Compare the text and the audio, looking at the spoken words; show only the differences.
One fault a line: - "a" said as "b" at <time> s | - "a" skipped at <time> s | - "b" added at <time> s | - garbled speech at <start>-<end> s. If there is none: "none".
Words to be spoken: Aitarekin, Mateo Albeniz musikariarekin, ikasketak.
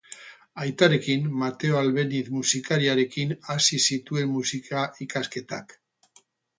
- "hasi zituen musika" added at 3.5 s